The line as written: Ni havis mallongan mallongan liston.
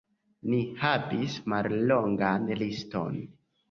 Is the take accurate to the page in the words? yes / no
no